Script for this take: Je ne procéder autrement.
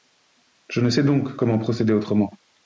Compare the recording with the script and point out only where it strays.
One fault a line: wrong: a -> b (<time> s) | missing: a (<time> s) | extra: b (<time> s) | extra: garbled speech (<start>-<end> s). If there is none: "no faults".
extra: sais donc comment (0.9 s)